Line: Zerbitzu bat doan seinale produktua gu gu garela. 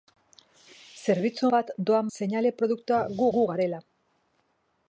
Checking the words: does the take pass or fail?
pass